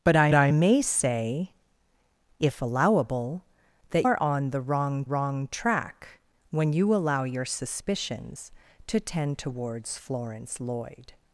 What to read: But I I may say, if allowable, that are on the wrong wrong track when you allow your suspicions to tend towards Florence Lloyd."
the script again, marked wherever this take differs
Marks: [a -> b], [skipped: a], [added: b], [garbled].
But I I may say, if allowable, that are on the wrong wrong track when you allow your suspicions to tend towards Florence Lloyd."